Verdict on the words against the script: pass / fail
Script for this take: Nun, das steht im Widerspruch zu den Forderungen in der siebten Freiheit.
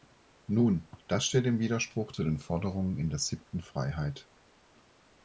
pass